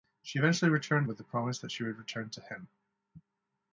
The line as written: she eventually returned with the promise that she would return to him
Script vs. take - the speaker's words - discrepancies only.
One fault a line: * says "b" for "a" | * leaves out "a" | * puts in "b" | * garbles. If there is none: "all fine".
all fine